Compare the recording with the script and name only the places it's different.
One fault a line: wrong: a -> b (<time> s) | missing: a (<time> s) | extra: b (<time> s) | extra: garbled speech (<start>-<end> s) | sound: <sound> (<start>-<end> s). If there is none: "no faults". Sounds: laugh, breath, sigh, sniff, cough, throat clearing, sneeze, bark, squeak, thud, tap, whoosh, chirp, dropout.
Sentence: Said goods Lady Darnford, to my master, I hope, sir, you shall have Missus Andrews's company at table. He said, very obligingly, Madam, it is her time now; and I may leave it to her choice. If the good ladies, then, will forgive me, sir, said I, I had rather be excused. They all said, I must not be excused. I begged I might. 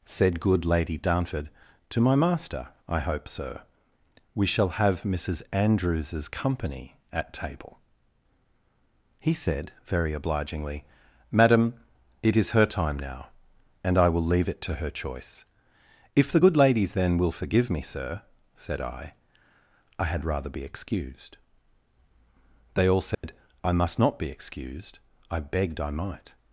wrong: goods -> good (0.4 s)
wrong: you -> we (4.3 s)
wrong: may -> will (14.1 s)
sound: dropout (23.1-23.2 s)